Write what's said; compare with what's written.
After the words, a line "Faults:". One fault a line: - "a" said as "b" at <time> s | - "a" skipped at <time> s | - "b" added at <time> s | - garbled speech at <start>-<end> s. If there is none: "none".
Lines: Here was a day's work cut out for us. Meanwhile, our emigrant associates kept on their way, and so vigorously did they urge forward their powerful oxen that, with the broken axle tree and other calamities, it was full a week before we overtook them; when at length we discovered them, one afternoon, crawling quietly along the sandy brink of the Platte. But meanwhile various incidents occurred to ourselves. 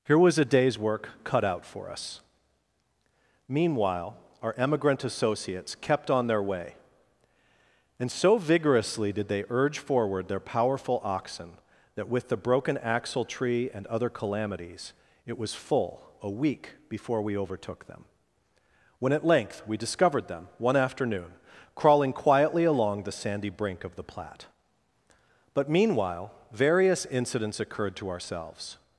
Here was a day's work cut out for us. Meanwhile, our emigrant associates kept on their way, and so vigorously did they urge forward their powerful oxen that, with the broken axle tree and other calamities, it was full a week before we overtook them; when at length we discovered them, one afternoon, crawling quietly along the sandy brink of the Platte. But meanwhile various incidents occurred to ourselves.
Faults:
none